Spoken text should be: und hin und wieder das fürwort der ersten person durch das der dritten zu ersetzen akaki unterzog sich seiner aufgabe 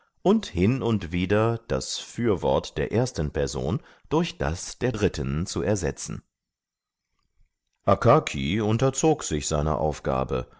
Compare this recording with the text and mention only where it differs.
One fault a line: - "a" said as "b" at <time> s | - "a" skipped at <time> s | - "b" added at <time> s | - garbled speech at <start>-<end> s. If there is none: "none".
none